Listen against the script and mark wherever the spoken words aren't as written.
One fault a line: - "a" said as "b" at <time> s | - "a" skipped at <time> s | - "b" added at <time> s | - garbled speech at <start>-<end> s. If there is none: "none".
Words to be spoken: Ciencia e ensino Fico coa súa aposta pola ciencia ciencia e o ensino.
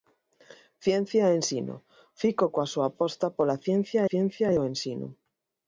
none